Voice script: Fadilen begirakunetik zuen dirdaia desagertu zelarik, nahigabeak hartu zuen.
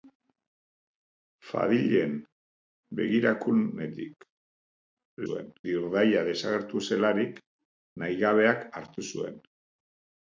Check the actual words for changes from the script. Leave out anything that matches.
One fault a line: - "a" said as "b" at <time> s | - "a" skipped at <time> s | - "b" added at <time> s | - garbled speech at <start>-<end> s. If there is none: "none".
none